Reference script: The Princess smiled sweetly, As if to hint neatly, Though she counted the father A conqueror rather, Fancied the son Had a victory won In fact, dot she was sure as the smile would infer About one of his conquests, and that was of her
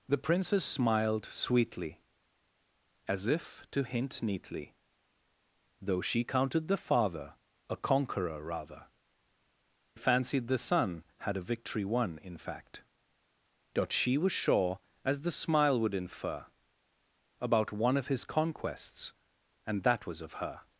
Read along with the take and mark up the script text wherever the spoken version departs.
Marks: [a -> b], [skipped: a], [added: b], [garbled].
The Princess smiled sweetly, As if to hint neatly, Though she counted the father A conqueror rather, Fancied the son Had a victory won In fact, dot she was sure as the smile would infer About one of his conquests, and that was of her